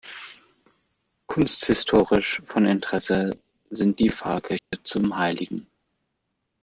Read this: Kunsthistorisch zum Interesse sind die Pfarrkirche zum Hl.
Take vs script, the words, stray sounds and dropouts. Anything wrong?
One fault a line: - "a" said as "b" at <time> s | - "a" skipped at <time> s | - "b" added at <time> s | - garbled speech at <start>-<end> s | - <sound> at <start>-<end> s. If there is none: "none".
- "zum" said as "von" at 2.5 s
- dropout at 4.6-4.7 s